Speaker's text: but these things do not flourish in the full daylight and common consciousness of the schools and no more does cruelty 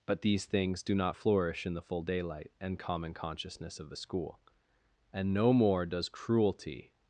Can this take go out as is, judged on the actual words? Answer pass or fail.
fail